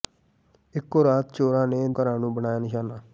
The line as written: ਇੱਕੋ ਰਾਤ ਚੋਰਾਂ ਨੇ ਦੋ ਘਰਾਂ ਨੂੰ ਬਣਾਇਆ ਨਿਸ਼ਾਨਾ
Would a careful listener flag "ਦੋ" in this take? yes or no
yes